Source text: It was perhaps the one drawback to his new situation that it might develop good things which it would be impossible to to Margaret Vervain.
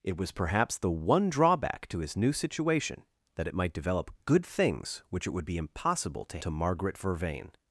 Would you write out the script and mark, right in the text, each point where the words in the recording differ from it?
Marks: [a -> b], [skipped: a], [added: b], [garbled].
It was perhaps the one drawback to his new situation that it might develop good things which it would be impossible to to Margaret Vervain.